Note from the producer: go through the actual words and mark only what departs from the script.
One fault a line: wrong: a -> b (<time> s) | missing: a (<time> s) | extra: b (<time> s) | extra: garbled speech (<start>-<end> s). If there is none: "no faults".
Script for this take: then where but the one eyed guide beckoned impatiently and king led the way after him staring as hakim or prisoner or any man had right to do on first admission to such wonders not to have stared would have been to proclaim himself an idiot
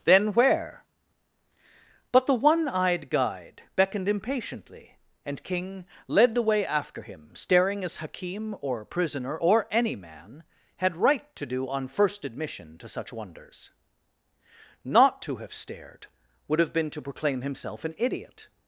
no faults